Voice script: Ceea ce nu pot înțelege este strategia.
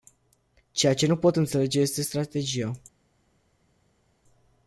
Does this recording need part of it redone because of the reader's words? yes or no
no